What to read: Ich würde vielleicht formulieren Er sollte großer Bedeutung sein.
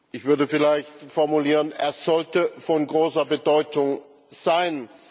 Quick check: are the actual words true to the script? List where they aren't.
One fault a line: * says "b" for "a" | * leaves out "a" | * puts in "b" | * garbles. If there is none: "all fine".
* puts in "von"